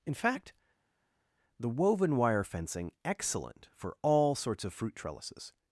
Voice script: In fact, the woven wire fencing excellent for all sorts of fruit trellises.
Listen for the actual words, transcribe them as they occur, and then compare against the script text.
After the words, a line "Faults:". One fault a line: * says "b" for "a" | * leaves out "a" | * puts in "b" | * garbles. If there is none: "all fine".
In fact, the woven wire fencing excellent for all sorts of fruit trellises.
Faults:
all fine